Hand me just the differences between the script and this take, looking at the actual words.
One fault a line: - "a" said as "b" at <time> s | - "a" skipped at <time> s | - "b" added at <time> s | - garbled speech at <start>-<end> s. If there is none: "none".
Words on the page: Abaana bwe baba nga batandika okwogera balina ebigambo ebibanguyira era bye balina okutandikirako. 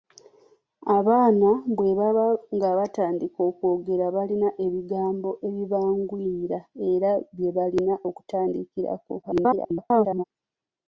- garbled speech at 9.2-10.2 s